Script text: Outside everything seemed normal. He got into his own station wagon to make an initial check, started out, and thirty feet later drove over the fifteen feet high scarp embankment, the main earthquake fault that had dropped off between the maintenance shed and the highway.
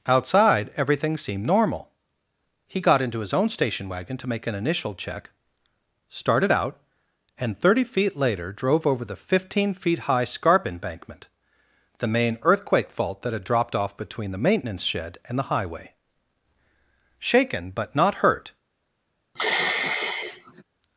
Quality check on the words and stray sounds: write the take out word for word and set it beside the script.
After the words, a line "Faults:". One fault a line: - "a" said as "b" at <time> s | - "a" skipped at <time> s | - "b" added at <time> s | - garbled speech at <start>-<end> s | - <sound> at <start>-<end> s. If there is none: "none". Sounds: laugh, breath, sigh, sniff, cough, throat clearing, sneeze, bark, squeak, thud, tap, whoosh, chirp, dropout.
Outside everything seemed normal. He got into his own station wagon to make an initial check, started out, and thirty feet later drove over the fifteen feet high scarp embankment, the main earthquake fault that had dropped off between the maintenance shed and the highway. Shaken, but not hurt
Faults:
- "Shaken but not hurt" added at 17.2 s
- sigh at 19.4-20.6 s